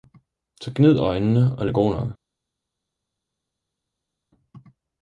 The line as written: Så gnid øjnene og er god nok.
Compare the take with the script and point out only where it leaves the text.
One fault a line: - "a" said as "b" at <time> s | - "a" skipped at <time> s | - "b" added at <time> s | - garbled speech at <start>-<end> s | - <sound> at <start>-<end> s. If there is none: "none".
none